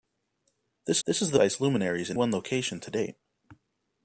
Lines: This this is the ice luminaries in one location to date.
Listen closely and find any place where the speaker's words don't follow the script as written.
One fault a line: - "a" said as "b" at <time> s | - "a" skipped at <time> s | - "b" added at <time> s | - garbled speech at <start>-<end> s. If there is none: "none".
none